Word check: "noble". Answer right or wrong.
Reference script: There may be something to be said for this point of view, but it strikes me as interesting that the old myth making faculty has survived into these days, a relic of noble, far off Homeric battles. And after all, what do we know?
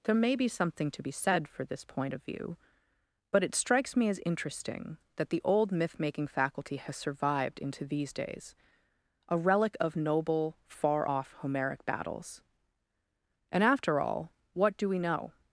right